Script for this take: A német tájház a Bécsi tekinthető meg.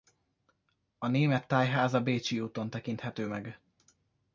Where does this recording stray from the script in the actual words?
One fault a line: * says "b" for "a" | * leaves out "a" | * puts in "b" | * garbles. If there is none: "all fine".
* puts in "úton"